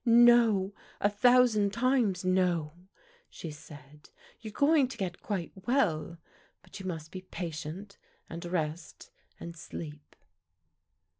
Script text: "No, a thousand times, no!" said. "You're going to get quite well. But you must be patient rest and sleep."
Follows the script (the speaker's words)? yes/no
no